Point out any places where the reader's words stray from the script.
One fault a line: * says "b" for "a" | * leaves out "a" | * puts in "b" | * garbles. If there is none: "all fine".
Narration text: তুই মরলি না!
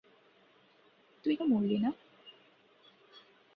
all fine